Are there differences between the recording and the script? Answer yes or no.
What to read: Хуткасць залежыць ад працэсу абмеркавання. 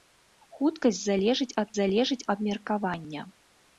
yes